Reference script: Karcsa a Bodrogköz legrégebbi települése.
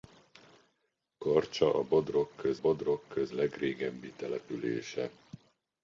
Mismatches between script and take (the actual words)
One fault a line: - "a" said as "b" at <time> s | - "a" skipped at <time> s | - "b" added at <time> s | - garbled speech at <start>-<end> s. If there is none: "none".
- "Bodrogköz" added at 2.6 s